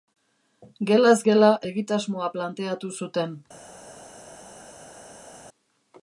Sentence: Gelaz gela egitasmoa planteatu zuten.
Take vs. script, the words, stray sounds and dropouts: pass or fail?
pass